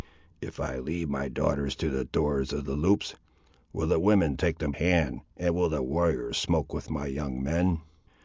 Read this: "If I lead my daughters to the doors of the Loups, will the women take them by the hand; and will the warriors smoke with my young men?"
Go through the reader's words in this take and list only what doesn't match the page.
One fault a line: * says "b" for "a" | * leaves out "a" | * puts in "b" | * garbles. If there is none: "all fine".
* leaves out "by the"